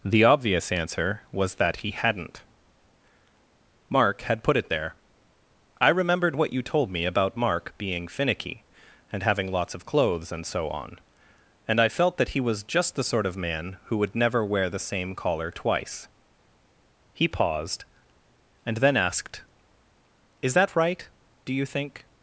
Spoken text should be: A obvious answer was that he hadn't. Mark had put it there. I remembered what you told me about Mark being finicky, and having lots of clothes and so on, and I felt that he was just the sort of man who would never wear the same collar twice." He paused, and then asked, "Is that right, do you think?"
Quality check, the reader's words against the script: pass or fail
fail